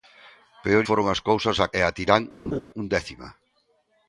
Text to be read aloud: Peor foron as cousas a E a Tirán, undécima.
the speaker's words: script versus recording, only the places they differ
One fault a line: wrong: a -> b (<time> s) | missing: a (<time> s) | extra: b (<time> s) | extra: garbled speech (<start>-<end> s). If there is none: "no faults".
no faults